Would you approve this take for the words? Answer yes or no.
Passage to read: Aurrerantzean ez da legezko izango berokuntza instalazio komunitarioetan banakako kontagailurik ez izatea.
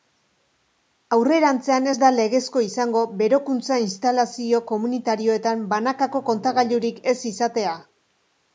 yes